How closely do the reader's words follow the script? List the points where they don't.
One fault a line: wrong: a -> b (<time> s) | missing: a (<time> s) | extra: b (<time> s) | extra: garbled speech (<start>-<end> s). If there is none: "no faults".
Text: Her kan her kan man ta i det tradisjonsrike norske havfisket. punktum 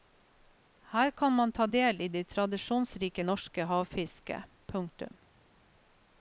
missing: her kan (1.3 s)
extra: del (1.6 s)